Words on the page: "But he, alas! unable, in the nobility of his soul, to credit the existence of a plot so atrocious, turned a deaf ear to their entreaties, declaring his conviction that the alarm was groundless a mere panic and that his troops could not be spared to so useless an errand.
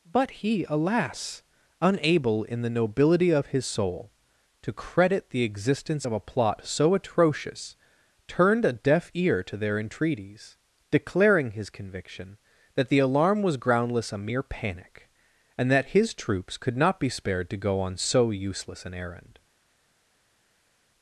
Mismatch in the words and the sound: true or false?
true